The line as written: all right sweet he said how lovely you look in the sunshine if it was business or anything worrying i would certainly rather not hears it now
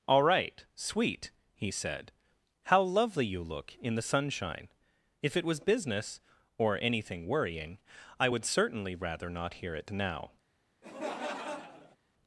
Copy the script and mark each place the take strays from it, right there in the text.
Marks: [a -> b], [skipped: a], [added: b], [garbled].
all right sweet he said how lovely you look in the sunshine if it was business or anything worrying i would certainly rather not [hears -> hear] it now